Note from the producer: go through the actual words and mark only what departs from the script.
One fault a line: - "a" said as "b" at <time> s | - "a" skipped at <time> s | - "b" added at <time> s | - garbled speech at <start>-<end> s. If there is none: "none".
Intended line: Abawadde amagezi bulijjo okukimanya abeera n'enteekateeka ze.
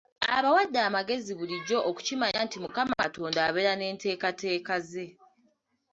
- "nti mukama Katonda" added at 2.5 s